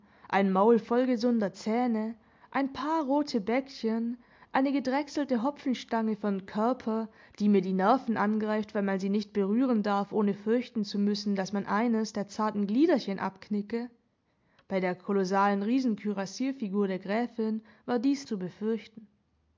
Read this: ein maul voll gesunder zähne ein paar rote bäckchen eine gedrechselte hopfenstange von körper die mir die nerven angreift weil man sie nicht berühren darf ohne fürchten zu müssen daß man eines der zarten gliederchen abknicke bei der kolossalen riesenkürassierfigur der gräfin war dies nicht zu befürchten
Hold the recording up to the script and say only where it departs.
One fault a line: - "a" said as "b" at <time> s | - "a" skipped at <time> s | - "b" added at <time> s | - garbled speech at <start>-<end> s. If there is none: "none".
- "nicht" skipped at 18.2 s